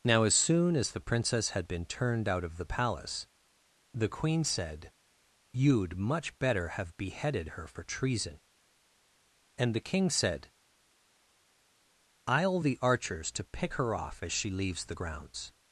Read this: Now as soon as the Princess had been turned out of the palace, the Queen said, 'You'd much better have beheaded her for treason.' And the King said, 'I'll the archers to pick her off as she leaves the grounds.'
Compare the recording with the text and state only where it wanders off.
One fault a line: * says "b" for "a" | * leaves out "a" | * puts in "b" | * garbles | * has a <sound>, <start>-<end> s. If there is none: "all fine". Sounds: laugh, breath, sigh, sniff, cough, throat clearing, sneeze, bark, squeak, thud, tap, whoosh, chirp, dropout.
all fine